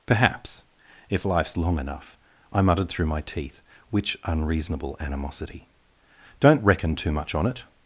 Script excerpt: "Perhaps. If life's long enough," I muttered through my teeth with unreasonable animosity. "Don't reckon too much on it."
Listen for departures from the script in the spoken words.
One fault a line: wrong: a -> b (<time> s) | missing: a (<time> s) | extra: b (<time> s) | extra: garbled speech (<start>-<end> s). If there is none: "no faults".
wrong: with -> which (3.9 s)